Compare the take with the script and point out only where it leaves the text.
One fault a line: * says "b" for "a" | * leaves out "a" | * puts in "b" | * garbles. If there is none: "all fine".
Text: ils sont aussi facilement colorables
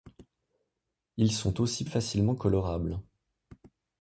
all fine